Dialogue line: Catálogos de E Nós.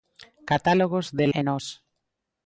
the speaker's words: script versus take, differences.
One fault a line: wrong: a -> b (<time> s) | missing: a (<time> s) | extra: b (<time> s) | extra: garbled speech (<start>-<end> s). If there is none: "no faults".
no faults